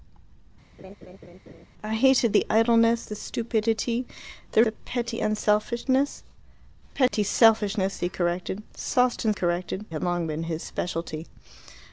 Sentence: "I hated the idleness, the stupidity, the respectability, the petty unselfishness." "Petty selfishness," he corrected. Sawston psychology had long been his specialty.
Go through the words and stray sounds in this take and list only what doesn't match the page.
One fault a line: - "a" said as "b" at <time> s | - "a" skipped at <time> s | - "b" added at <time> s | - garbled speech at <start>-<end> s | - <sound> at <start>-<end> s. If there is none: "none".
- laugh at 0.8-1.7 s
- "respectability" skipped at 4.6 s
- dropout at 7.1-7.1 s
- "psychology" said as "corrected" at 9.3 s